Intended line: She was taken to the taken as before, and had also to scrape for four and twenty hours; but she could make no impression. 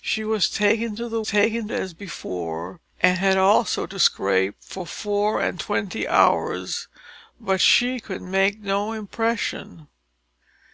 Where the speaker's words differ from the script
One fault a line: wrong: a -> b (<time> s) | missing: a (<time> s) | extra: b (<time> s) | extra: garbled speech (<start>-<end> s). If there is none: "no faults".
no faults